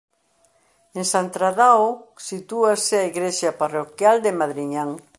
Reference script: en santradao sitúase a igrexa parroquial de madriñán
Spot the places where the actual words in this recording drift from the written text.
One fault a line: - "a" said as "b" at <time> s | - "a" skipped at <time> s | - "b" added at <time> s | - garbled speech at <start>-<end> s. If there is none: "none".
none